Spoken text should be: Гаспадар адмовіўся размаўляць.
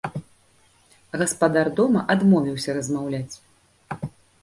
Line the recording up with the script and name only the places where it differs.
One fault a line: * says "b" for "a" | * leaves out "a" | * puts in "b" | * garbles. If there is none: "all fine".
* puts in "дома"